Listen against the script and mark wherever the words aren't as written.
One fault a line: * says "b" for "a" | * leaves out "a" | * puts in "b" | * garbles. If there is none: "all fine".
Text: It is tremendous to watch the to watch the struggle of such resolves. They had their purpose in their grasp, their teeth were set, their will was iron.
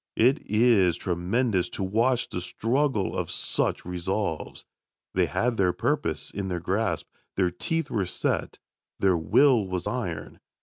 * leaves out "to watch the"